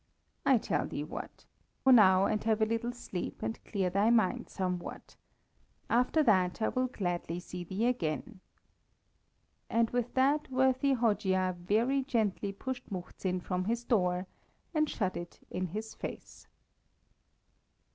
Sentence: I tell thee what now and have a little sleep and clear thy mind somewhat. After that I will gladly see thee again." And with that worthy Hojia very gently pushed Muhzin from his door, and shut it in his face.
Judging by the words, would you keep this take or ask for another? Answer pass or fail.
pass